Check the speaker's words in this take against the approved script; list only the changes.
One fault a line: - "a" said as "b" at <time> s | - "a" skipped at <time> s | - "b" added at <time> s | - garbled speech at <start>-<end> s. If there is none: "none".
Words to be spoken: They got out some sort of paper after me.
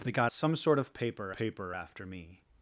- "out" skipped at 0.3 s
- "paper" added at 1.3 s